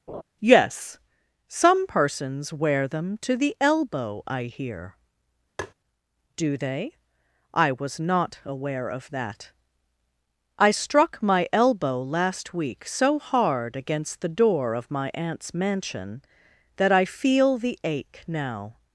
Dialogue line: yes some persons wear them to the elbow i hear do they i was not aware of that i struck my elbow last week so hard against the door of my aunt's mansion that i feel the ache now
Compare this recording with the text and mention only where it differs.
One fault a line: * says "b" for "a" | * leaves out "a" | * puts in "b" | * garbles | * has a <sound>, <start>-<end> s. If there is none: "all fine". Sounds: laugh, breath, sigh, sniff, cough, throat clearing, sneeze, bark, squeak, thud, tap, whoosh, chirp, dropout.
* has a laugh, 0.1-0.2 s
* has a tap, 5.6-5.7 s